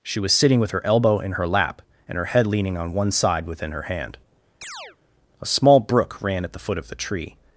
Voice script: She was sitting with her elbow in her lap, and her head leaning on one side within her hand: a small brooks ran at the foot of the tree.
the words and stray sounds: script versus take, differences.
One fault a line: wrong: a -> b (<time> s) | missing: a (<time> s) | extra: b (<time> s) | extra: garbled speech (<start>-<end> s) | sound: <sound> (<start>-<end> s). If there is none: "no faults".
sound: chirp (4.6-5.0 s)
wrong: brooks -> brook (5.8 s)